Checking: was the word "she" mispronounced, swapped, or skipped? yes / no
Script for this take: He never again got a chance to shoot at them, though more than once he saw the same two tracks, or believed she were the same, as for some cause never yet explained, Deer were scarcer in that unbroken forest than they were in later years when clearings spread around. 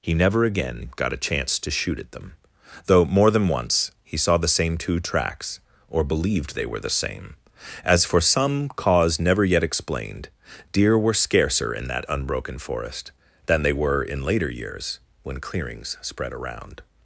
yes